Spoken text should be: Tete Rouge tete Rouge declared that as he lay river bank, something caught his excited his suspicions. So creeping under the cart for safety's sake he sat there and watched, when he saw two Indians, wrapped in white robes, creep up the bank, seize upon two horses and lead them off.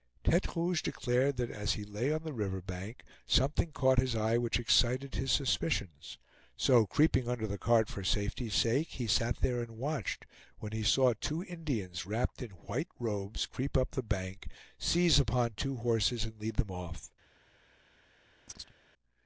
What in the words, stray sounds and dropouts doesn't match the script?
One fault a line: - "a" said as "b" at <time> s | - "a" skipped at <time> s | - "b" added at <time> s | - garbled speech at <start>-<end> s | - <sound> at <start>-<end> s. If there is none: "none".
- "tete Rouge" skipped at 0.8 s
- "on the" added at 2.1 s
- "eye which" added at 4.2 s
- chirp at 18.5-18.8 s